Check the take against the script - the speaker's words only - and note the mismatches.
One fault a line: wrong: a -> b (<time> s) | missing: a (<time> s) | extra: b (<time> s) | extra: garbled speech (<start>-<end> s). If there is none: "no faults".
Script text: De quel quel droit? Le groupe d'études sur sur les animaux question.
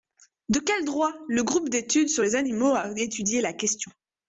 missing: quel (0.9 s)
missing: sur (2.2 s)
extra: a étudié la (2.7 s)